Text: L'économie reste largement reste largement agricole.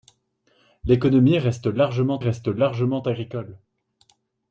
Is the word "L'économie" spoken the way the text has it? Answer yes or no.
yes